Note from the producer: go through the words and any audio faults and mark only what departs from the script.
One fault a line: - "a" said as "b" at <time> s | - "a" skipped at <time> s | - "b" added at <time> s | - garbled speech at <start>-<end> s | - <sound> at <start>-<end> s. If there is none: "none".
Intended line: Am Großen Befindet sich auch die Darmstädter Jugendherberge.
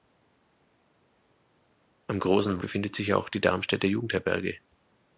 none